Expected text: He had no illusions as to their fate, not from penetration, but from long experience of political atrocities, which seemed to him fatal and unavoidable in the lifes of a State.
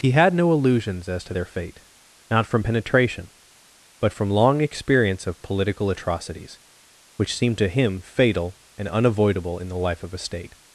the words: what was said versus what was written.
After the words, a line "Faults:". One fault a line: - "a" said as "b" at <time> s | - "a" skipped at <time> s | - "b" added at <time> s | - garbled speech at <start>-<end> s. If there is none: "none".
He had no illusions as to their fate, not from penetration, but from long experience of political atrocities, which seemed to him fatal and unavoidable in the life of a State.
Faults:
- "lifes" said as "life" at 9.8 s